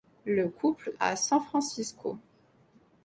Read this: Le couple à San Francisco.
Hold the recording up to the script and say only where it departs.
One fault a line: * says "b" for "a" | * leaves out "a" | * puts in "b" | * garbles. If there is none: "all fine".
all fine